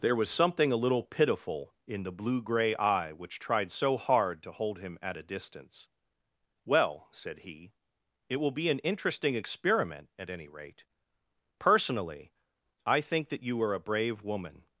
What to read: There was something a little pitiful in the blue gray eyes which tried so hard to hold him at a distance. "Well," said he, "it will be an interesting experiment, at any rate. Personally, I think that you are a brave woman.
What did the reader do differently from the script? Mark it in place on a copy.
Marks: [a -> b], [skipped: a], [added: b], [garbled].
There was something a little pitiful in the blue gray [eyes -> eye] which tried so hard to hold him at a distance. "Well," said he, "it will be an interesting experiment, at any rate. Personally, I think that you are a brave woman.